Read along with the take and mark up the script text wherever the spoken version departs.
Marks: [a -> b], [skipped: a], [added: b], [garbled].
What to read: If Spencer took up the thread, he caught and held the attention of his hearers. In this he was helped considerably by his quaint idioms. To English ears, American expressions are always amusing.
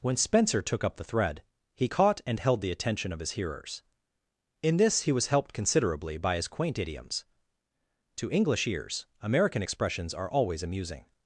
[If -> When] Spencer took up the thread, he caught and held the attention of his hearers. In this he was helped considerably by his quaint idioms. To English ears, American expressions are always amusing.